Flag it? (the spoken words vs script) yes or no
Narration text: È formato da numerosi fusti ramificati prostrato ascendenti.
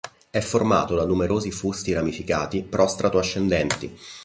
no